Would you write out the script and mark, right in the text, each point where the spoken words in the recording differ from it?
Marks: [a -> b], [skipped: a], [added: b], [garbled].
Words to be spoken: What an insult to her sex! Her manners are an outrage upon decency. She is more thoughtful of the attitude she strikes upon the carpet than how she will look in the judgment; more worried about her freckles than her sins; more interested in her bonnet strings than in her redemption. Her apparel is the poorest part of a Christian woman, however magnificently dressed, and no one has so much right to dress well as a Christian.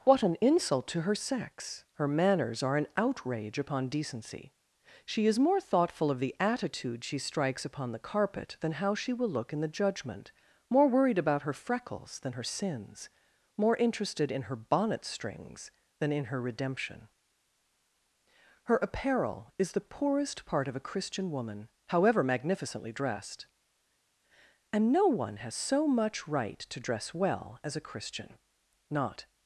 What an insult to her sex! Her manners are an outrage upon decency. She is more thoughtful of the attitude she strikes upon the carpet than how she will look in the judgment; more worried about her freckles than her sins; more interested in her bonnet strings than in her redemption. Her apparel is the poorest part of a Christian woman, however magnificently dressed, and no one has so much right to dress well as a Christian. [added: Not]